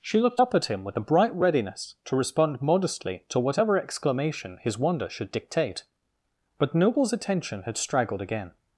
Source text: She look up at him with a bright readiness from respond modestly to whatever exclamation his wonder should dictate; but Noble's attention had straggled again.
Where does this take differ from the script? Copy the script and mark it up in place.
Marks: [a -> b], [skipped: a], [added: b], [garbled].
She [look -> looked] up at him with a bright readiness [from -> to] respond modestly to whatever exclamation his wonder should dictate; but Noble's attention had straggled again.